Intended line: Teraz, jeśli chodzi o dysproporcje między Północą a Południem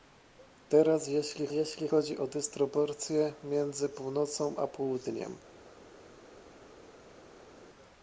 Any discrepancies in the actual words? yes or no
yes